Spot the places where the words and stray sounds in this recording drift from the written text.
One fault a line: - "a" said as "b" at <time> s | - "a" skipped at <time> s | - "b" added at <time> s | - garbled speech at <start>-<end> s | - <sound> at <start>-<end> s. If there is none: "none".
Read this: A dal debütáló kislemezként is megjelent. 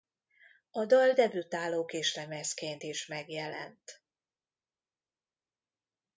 none